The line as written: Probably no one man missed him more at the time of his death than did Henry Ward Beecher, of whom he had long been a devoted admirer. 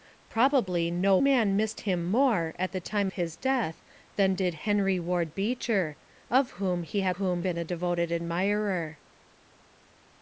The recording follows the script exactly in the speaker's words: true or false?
false